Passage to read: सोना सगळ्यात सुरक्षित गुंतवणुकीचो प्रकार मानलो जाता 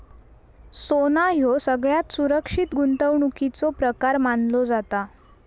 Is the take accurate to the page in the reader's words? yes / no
no